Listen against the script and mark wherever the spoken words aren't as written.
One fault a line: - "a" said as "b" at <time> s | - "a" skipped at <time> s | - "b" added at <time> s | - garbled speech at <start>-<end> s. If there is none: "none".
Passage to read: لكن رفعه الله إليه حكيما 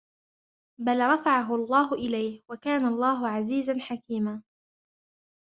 - "لكن" said as "بل" at 0.8 s
- "وكان الله عزيزا" added at 2.5 s